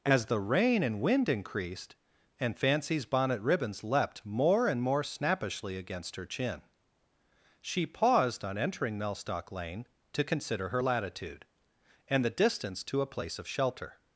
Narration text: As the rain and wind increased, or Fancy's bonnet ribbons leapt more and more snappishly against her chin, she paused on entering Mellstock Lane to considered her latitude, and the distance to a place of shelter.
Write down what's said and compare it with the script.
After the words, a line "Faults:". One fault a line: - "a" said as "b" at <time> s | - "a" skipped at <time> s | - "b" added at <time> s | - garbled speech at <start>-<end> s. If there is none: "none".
As the rain and wind increased, and Fancy's bonnet ribbons leapt more and more snappishly against her chin, she paused on entering Mellstock Lane to consider her latitude, and the distance to a place of shelter.
Faults:
- "or" said as "and" at 2.4 s
- "considered" said as "consider" at 10.2 s